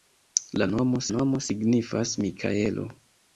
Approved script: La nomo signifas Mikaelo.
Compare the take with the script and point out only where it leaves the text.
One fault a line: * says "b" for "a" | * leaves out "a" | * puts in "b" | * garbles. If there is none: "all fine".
* puts in "nomo"